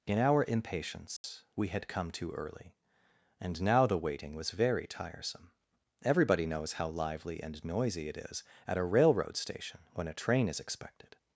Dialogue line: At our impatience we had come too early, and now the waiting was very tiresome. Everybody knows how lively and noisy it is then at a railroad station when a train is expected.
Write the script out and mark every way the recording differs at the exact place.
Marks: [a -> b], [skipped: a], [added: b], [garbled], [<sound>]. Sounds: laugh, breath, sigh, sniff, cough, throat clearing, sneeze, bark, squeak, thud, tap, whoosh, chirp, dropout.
[At -> In] our impatience [dropout] we had come too early, and now the waiting was very tiresome. Everybody knows how lively and noisy it is [skipped: then] at a railroad station when a train is expected.